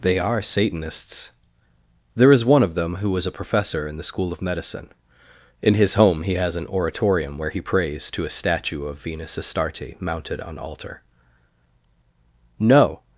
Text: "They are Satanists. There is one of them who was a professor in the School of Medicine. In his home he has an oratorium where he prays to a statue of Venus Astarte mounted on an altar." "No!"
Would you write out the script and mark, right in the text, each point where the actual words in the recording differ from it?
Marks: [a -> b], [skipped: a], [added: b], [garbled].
"They are Satanists. There is one of them who was a professor in the School of Medicine. In his home he has an oratorium where he prays to a statue of Venus Astarte mounted on [skipped: an] altar." "No!"